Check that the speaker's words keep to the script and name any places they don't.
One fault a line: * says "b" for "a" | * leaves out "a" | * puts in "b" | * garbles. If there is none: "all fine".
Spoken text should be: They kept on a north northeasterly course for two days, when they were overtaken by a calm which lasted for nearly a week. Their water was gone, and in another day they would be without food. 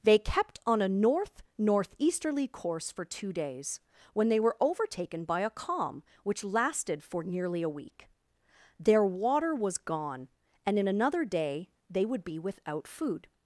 all fine